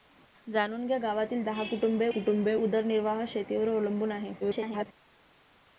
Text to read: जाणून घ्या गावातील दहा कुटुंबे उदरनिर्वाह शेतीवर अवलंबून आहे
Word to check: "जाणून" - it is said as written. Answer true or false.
true